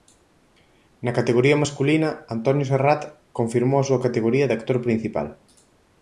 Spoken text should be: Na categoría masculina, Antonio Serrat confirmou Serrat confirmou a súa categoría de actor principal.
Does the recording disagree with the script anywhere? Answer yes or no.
yes